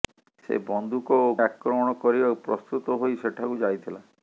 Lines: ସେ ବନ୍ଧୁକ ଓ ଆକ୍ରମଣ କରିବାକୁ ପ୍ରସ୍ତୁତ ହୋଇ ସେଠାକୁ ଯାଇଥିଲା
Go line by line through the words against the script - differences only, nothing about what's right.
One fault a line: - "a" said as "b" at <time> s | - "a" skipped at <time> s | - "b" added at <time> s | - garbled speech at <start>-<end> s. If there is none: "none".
none